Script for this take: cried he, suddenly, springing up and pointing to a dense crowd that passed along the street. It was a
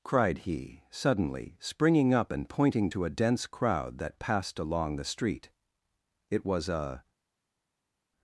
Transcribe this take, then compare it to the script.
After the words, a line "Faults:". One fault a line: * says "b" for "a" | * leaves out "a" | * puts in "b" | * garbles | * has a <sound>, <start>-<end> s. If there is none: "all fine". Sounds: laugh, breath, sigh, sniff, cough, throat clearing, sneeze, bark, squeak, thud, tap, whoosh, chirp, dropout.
cried he, suddenly, springing up and pointing to a dense crowd that passed along the street. It was a
Faults:
all fine